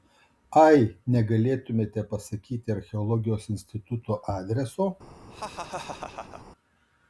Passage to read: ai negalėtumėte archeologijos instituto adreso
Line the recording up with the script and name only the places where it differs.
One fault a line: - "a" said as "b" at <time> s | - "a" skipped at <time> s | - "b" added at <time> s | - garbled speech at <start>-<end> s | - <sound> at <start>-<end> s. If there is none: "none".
- "pasakyti" added at 2.1 s
- laugh at 5.3-6.4 s